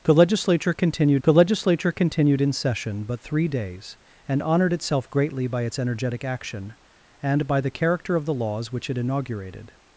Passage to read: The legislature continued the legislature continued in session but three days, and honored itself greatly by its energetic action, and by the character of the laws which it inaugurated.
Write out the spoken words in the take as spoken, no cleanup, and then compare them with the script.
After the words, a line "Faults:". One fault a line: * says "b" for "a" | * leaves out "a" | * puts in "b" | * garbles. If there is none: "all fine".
The legislature continued the legislature continued in session but three days, and honored itself greatly by its energetic action, and by the character of the laws which it inaugurated.
Faults:
all fine